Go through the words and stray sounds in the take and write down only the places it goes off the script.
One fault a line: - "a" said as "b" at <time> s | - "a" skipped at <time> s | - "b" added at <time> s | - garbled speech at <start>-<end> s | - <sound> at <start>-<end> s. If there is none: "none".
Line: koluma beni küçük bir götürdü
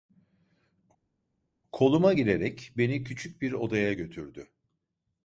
- "girerek" added at 2.1 s
- "odaya" added at 3.5 s